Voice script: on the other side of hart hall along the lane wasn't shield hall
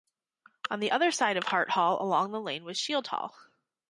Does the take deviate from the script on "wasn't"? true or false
true